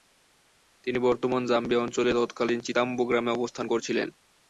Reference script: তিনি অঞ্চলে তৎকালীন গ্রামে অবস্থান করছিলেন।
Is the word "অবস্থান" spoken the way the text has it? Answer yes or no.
yes